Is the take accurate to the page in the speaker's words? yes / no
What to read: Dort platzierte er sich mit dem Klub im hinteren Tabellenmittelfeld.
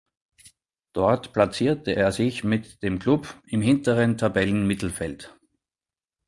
yes